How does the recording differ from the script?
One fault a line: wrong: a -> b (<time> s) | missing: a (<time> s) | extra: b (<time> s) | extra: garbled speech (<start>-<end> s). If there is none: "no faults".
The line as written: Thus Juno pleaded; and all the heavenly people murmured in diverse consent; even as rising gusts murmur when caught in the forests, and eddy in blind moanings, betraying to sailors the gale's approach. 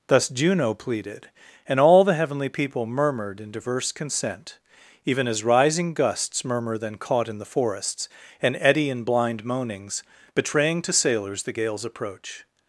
wrong: when -> then (6.8 s)